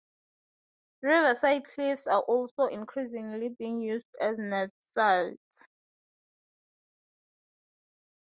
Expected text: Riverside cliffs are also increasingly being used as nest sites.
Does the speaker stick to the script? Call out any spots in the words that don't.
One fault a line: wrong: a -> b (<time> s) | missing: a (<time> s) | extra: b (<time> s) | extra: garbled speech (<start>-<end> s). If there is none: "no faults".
no faults